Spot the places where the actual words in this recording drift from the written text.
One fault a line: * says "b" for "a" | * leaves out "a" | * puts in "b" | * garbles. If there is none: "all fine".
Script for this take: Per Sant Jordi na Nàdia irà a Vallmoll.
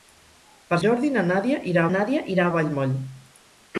* leaves out "Sant"
* puts in "Nàdia irà"